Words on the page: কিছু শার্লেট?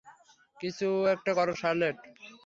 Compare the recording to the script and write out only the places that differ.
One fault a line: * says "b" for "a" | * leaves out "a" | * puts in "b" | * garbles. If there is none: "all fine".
* puts in "একটা করো"